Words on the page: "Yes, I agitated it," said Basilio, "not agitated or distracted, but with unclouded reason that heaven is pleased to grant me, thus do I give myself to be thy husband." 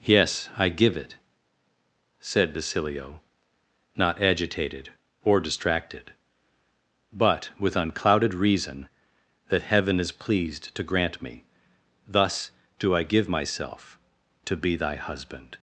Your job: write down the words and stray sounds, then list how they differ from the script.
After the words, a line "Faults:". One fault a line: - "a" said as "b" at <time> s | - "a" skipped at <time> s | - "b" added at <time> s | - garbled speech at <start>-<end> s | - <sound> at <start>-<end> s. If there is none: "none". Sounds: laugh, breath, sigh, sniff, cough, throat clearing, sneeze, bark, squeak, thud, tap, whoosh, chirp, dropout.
"Yes, I give it," said Basilio, "not agitated or distracted, but with unclouded reason that heaven is pleased to grant me, thus do I give myself to be thy husband."
Faults:
- "agitated" said as "give" at 0.7 s